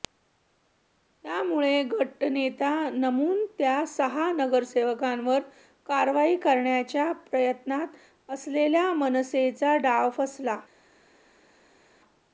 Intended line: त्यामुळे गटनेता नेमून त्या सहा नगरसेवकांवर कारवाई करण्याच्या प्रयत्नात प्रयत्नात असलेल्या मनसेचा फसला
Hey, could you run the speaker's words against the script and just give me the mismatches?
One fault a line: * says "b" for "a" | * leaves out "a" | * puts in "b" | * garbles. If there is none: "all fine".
* leaves out "प्रयत्नात"
* puts in "डाव"